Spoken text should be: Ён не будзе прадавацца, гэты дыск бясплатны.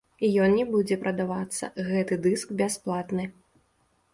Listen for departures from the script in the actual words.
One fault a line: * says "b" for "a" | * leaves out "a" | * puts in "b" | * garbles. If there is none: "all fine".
all fine